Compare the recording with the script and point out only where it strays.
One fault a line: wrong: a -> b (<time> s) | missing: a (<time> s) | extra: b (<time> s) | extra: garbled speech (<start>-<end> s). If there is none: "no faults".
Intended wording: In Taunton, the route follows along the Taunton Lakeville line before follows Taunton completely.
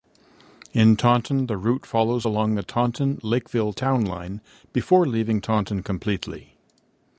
extra: town (3.7 s)
wrong: follows -> leaving (5.1 s)